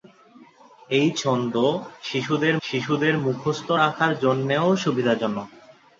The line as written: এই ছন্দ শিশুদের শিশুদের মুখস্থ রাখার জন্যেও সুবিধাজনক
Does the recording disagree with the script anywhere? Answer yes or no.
no